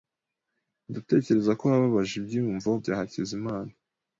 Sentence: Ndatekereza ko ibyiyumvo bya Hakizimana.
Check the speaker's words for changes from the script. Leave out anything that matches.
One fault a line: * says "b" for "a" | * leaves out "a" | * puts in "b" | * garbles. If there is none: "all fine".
* puts in "wababaje"